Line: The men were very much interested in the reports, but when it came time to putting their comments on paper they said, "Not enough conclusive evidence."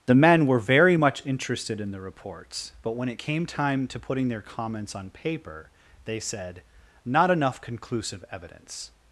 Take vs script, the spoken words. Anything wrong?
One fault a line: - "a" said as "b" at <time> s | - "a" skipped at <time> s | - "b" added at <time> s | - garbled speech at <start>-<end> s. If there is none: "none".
none